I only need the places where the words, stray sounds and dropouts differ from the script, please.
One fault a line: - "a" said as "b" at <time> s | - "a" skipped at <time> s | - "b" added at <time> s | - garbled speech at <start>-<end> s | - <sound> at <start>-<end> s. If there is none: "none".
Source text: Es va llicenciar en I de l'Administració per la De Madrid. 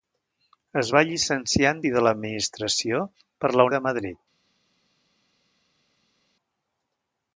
none